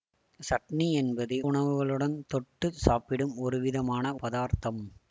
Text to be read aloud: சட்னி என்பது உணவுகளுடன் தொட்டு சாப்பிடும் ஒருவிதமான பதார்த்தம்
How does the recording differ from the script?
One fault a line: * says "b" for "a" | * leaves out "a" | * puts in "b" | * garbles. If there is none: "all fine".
all fine